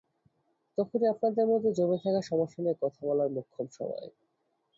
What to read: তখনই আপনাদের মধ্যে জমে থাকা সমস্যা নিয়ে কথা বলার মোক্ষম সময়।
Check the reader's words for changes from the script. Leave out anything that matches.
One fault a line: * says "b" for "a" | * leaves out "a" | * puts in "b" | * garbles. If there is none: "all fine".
all fine